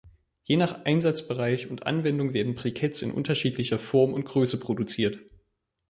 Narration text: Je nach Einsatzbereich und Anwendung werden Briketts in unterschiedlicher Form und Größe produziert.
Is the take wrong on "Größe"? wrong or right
right